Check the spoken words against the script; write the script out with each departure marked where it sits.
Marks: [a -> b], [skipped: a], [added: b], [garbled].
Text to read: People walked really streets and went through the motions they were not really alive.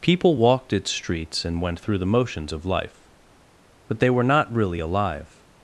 People walked [really -> its] streets and went through the motions [added: of life But] they were not really alive.